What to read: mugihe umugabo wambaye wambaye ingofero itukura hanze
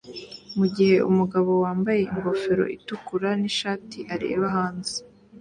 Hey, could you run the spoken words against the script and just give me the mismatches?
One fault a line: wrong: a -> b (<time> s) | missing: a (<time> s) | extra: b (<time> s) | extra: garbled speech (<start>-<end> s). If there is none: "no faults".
missing: wambaye (2.0 s)
extra: nishati areba (3.4 s)